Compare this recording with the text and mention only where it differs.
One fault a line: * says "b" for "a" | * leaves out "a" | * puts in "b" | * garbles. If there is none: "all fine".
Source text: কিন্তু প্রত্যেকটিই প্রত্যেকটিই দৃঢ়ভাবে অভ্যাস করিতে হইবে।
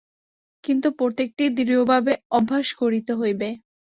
* leaves out "প্রত্যেকটিই"